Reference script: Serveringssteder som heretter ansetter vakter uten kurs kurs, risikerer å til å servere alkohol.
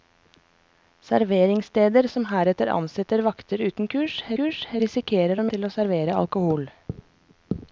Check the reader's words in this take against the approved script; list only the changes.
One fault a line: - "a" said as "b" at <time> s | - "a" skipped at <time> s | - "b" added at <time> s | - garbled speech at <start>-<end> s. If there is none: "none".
none